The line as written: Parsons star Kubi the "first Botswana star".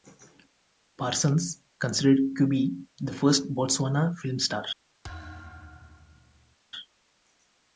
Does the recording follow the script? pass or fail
fail